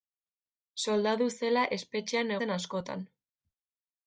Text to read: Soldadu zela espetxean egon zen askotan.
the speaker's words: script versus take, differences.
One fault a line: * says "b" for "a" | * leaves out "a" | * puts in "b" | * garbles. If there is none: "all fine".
* leaves out "egon"